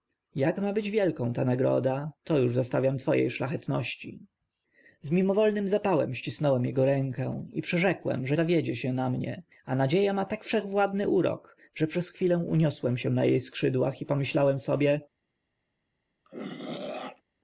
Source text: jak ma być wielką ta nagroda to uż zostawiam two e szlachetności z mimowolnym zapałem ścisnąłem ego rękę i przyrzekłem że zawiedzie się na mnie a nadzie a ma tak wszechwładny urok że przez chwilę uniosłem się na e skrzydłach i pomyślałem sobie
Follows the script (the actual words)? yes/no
yes